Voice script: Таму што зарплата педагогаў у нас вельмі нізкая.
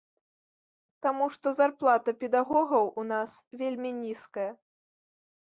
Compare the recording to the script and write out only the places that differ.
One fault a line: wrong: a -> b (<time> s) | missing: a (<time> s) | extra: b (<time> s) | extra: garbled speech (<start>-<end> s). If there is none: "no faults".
no faults